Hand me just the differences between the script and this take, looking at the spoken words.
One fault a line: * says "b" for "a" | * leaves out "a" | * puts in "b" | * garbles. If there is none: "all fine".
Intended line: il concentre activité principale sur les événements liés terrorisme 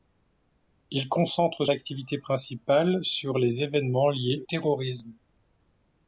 all fine